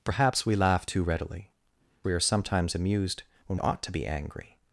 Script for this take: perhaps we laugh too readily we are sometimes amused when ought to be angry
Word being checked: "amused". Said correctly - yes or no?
yes